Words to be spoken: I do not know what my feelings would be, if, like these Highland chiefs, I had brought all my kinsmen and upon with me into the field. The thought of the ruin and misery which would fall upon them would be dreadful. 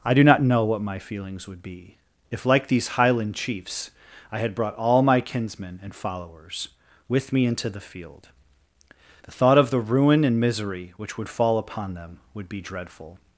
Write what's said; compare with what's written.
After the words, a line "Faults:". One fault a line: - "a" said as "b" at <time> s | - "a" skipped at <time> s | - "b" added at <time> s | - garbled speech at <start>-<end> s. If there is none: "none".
I do not know what my feelings would be, if, like these Highland chiefs, I had brought all my kinsmen and followers with me into the field. The thought of the ruin and misery which would fall upon them would be dreadful.
Faults:
- "upon" said as "followers" at 5.9 s